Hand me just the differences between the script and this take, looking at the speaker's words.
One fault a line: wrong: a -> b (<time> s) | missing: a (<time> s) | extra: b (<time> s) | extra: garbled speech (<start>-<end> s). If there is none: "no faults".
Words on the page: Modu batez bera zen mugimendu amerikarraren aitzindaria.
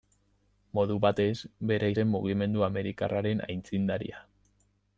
no faults